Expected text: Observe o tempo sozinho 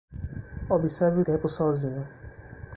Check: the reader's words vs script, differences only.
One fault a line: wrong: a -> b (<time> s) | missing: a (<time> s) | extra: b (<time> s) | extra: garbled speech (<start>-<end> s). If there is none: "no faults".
no faults